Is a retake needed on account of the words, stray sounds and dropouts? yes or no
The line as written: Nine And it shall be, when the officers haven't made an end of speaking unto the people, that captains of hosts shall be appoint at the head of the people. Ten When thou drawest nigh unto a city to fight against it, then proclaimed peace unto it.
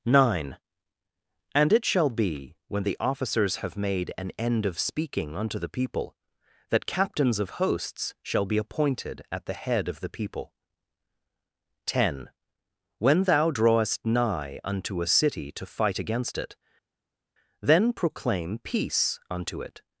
yes